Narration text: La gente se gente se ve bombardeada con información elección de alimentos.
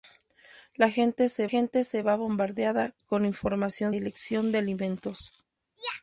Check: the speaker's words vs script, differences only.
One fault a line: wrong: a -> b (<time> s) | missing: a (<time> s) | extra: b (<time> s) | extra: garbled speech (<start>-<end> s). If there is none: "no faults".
no faults